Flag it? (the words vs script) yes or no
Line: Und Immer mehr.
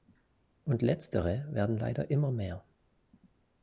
yes